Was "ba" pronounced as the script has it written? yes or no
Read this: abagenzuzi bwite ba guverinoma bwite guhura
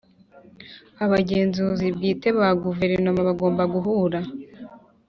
yes